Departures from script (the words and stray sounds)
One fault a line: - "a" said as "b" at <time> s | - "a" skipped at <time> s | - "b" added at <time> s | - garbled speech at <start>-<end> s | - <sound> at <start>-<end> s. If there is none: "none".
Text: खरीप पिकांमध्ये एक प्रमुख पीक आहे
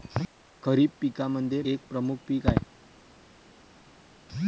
none